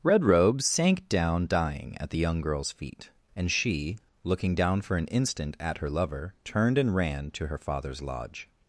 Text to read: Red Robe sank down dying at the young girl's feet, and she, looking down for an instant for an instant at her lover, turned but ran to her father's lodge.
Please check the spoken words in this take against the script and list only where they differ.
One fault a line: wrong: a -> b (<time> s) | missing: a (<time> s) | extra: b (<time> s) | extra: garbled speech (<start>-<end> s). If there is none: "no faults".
missing: for an instant (5.6 s)
wrong: but -> and (6.8 s)